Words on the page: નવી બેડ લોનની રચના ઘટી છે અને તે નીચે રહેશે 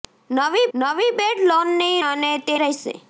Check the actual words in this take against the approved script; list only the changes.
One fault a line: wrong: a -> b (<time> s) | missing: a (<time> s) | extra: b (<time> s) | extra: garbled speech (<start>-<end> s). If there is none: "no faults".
extra: નવી (0.7 s)
missing: રચના ઘટી છે (2.0 s)
missing: નીચે (2.5 s)